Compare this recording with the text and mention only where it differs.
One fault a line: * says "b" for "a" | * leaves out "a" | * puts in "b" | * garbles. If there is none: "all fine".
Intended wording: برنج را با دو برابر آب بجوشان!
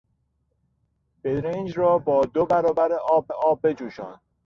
* puts in "آب"